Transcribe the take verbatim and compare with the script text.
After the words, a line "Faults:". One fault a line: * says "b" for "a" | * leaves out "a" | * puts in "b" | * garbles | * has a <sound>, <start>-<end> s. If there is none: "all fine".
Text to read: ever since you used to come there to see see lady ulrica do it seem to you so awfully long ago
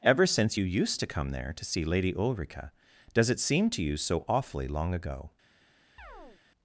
ever since you used to come there to see lady ulrica does it seem to you so awfully long ago
Faults:
* leaves out "see"
* says "does" for "do"
* has a chirp, 6.0-6.4 s